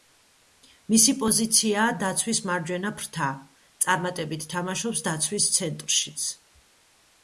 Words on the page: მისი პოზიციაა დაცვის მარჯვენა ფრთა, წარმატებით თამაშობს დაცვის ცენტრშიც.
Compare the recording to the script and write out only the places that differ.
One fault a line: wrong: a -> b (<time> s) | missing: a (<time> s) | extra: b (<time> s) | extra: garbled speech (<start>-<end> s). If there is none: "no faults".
no faults